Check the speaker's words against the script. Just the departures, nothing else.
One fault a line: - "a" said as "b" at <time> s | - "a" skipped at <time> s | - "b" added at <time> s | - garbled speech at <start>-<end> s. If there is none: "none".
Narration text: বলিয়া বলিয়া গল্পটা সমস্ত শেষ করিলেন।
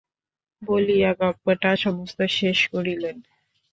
- "বলিয়া" skipped at 1.1 s